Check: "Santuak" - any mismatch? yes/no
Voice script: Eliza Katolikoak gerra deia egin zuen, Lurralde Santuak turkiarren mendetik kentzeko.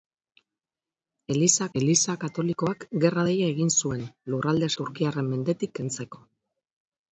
yes